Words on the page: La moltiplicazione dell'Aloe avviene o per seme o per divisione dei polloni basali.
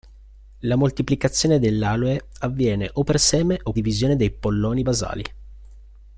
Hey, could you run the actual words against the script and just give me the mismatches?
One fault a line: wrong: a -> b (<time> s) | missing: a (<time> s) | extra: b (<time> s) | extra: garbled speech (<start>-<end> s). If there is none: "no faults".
missing: per (3.7 s)